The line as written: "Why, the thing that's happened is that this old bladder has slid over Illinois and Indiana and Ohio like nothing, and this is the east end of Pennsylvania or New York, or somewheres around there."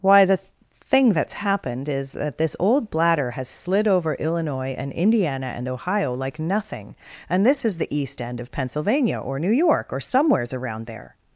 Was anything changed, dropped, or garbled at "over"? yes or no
no